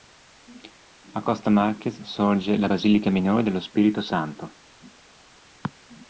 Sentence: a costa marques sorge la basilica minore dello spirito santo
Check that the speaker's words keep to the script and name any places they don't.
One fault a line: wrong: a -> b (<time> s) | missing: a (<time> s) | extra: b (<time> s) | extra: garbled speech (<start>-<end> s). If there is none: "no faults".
no faults